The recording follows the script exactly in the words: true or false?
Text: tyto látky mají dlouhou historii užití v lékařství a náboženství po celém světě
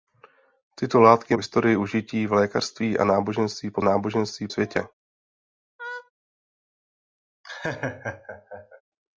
false